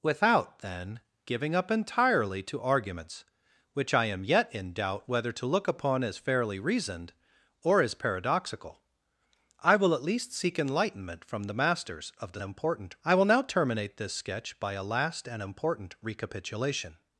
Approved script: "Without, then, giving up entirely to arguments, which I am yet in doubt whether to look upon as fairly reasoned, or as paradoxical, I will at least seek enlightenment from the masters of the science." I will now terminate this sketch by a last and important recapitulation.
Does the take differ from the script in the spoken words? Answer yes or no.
yes